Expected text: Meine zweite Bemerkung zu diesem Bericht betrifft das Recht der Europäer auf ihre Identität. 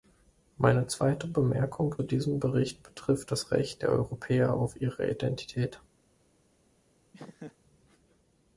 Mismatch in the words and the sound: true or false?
true